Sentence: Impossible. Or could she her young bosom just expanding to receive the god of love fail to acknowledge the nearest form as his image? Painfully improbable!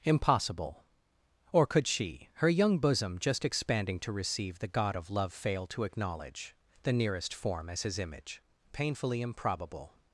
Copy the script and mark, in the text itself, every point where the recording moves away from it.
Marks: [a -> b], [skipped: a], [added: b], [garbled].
Impossible. Or could she her young bosom just expanding to receive the god of love fail to acknowledge the nearest form as his image? Painfully improbable!